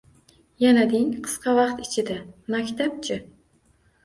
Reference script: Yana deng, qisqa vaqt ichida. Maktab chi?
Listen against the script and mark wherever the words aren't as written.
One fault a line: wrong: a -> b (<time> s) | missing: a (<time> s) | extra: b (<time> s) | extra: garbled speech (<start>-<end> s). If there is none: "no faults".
no faults